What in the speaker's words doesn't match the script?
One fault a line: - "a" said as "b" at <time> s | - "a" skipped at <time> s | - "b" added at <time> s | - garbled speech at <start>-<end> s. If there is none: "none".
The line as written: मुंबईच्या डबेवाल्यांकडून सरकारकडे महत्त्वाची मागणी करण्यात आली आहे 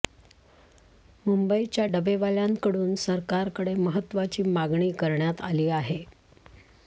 none